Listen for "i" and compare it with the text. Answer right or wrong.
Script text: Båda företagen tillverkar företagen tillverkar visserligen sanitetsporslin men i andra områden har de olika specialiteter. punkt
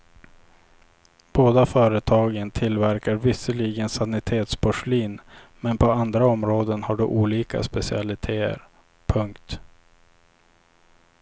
wrong